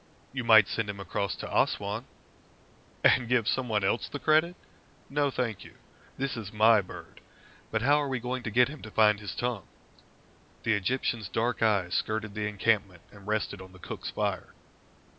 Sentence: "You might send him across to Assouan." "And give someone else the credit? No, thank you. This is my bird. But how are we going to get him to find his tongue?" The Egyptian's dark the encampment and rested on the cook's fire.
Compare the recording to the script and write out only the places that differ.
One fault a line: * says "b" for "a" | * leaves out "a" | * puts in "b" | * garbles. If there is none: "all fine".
* puts in "eyes skirted"